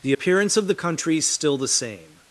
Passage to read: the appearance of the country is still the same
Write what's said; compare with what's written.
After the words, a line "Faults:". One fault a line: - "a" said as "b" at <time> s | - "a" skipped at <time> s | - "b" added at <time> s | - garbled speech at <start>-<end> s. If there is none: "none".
the appearance of the country is still the same
Faults:
none